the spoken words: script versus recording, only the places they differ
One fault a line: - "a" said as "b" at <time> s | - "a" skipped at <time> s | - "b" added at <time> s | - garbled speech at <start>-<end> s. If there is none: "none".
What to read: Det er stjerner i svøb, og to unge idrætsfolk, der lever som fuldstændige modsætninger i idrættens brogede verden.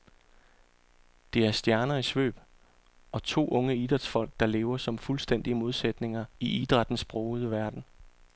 none